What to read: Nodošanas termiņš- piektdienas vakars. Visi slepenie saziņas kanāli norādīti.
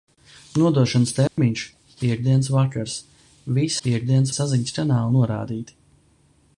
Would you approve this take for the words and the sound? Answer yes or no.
no